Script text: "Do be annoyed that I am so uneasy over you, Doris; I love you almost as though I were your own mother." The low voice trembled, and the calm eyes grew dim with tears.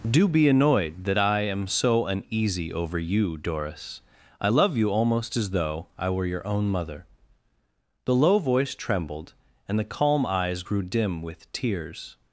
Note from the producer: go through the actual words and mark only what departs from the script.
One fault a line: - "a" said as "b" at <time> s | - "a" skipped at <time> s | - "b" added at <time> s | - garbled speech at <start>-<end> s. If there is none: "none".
none